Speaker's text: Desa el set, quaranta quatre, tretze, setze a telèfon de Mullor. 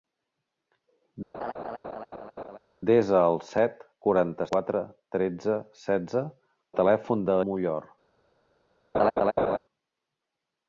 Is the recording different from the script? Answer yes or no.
no